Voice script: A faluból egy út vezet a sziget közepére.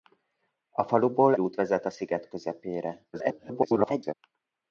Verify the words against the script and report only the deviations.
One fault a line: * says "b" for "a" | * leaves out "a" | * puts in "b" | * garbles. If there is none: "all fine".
* leaves out "egy"
* garbles